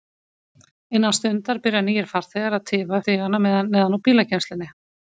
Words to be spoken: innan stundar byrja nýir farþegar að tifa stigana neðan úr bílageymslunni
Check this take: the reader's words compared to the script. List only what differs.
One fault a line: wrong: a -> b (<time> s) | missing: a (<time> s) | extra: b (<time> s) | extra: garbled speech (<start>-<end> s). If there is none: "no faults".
no faults